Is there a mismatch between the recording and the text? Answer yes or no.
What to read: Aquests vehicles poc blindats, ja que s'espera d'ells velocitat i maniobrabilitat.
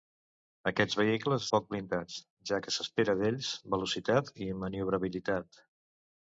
no